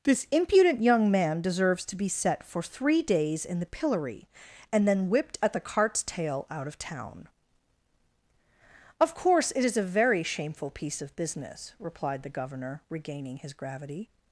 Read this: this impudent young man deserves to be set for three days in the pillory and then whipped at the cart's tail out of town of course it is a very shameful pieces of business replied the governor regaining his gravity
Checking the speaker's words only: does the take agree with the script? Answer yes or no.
no